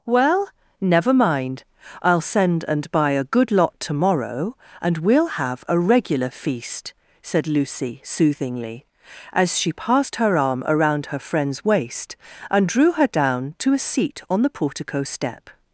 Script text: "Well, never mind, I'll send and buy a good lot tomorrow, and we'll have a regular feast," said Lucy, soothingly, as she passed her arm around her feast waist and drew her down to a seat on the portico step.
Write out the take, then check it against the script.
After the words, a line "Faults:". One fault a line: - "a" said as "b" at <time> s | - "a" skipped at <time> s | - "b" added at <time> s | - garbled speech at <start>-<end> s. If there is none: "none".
"Well, never mind, I'll send and buy a good lot tomorrow, and we'll have a regular feast," said Lucy, soothingly, as she passed her arm around her friend's waist and drew her down to a seat on the portico step.
Faults:
- "feast" said as "friend's" at 11.2 s